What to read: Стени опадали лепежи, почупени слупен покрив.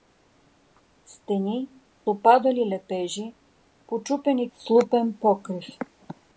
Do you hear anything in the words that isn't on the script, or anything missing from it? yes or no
no